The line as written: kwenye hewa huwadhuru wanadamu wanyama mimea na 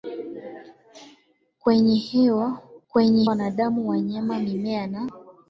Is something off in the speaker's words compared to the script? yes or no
yes